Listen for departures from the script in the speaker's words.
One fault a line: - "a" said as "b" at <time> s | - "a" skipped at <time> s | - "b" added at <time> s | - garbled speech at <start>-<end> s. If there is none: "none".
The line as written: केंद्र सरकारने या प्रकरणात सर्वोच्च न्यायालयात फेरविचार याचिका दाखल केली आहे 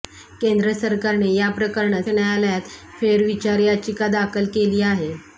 - "सर्वोच्च" skipped at 2.1 s